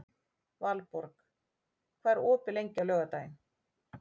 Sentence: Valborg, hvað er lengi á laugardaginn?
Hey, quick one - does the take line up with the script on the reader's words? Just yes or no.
no